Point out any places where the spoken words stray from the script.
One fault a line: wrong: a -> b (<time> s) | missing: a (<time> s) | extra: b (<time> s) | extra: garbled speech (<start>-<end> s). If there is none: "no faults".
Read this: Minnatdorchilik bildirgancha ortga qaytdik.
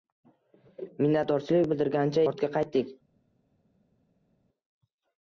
no faults